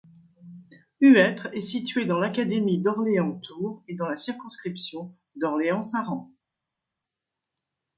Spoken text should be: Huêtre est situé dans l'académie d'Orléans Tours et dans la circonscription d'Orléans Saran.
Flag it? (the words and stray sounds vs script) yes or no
no